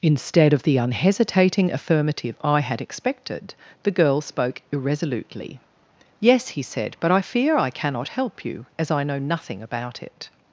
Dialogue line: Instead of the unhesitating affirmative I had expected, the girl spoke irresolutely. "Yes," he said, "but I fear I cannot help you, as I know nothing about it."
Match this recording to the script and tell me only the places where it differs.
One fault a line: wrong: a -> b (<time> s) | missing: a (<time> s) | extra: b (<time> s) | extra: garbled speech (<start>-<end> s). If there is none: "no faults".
no faults